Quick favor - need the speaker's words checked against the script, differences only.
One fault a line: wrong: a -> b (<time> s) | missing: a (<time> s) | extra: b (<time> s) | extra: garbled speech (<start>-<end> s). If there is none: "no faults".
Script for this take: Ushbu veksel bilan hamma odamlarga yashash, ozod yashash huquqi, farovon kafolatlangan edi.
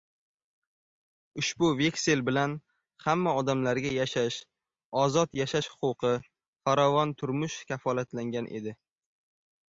extra: turmush (7.2 s)